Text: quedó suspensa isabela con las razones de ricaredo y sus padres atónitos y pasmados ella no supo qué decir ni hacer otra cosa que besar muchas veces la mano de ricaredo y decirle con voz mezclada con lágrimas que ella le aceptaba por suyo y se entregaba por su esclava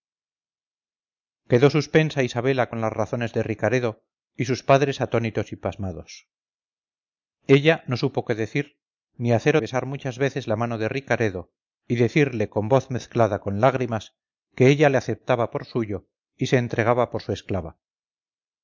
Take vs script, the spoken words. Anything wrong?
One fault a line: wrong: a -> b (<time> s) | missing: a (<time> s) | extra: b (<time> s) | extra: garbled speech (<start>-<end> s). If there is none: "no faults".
missing: otra cosa que (9.6 s)